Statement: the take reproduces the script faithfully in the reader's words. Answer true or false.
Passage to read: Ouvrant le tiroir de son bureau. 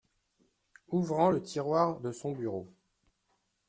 true